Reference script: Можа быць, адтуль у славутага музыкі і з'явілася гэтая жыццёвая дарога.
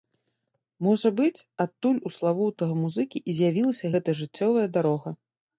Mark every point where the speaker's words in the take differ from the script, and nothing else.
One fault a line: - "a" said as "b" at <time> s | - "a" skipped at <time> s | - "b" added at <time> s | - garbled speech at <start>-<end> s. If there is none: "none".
none